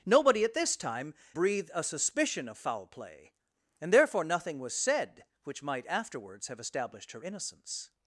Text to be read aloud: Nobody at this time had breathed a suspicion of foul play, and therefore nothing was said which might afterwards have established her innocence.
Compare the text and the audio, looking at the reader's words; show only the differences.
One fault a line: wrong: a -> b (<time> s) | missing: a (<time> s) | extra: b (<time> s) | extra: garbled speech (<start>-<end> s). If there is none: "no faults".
missing: had (1.1 s)